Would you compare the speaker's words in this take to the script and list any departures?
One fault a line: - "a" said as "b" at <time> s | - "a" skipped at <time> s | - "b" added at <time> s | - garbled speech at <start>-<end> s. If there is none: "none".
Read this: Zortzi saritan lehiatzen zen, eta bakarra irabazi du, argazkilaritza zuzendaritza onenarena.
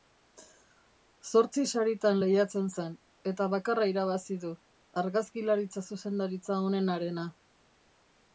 none